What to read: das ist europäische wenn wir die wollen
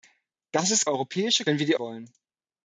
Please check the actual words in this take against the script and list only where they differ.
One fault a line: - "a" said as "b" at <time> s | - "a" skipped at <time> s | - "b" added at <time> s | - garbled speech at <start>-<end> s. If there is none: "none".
none